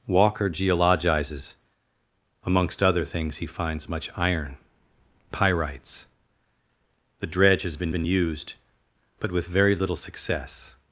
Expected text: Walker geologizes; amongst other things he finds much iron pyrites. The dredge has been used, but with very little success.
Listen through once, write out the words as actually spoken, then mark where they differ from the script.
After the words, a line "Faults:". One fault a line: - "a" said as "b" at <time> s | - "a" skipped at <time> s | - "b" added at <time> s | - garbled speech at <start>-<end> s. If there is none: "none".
Walker geologizes; amongst other things he finds much iron pyrites. The dredge has been been used, but with very little success.
Faults:
- "been" added at 7.9 s